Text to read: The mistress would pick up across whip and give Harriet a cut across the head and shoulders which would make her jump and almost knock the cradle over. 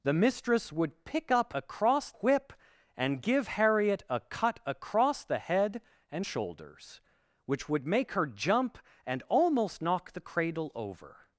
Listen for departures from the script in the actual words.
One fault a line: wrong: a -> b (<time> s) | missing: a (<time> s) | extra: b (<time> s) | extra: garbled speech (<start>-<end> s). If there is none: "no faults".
no faults